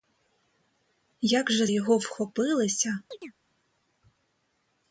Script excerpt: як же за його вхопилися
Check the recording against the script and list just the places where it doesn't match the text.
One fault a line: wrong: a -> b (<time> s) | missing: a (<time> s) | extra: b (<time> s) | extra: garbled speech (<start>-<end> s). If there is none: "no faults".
missing: за (1.7 s)